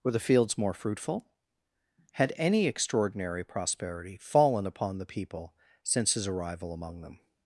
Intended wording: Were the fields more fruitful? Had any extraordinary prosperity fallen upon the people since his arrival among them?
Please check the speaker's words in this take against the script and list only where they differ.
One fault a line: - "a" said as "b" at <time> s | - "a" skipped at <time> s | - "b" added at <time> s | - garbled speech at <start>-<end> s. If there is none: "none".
none